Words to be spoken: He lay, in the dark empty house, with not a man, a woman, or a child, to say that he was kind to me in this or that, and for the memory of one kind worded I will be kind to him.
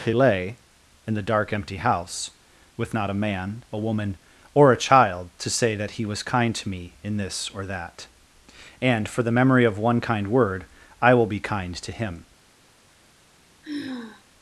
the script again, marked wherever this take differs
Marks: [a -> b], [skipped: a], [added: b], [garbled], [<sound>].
He lay, in the dark empty house, with not a man, a woman, or a child, to say that he was kind to me in this or that, and for the memory of one kind [worded -> word] I will be kind to him. [sigh]